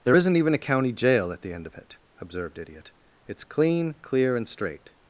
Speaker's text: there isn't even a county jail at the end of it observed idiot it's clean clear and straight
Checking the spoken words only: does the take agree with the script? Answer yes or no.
yes